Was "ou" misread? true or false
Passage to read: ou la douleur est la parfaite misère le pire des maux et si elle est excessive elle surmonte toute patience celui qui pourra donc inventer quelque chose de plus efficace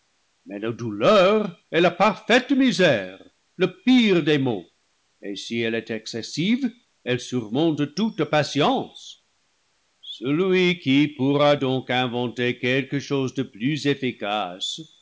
true